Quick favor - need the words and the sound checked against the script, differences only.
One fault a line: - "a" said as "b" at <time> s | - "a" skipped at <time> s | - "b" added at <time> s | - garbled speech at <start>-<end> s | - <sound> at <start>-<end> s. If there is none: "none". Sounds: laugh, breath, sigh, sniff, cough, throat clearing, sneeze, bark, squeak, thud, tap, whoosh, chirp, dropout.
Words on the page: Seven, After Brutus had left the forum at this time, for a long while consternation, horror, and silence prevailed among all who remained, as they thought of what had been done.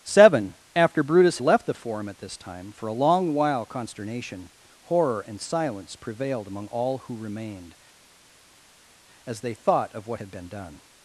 - "had" skipped at 1.4 s